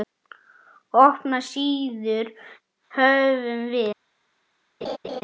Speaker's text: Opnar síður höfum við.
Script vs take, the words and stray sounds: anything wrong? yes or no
yes